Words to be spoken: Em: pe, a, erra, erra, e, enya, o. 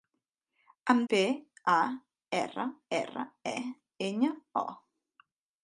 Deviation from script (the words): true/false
false